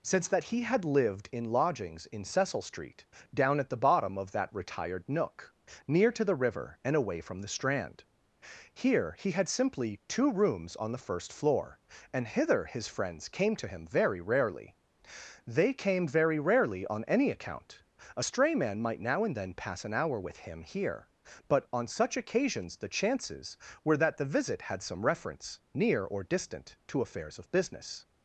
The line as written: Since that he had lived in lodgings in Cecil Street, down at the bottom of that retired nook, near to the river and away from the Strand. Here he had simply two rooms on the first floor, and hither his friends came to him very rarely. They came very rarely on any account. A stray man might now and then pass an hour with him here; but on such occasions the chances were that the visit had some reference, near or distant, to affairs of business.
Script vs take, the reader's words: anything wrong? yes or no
no